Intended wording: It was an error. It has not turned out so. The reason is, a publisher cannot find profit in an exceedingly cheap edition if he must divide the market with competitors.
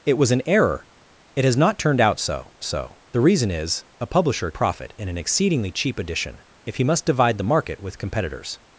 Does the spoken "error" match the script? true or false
true